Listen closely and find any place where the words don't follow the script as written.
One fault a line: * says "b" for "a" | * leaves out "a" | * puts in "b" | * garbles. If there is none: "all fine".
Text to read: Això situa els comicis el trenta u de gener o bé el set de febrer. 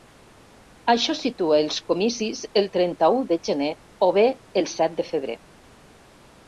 all fine